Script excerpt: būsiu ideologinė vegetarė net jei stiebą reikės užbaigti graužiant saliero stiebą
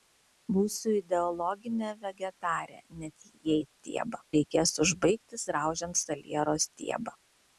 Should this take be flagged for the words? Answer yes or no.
no